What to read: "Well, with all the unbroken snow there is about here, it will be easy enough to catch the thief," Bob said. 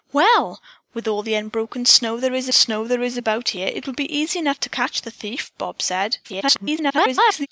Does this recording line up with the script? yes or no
no